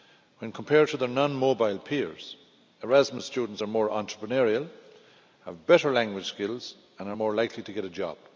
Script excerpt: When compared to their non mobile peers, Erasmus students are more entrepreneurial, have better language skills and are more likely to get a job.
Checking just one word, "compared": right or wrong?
right